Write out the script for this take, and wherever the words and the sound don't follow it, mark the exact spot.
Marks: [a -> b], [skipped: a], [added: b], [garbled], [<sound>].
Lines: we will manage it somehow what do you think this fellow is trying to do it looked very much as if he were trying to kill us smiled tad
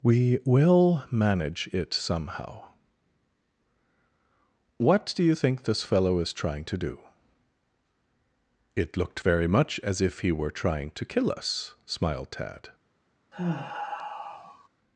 we will manage it somehow what do you think this fellow is trying to do it looked very much as if he were trying to kill us smiled tad [sigh]